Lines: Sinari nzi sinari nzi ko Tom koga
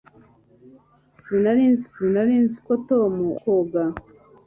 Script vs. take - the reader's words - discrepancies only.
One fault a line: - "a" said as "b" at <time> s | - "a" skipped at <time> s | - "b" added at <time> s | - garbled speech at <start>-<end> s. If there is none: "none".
none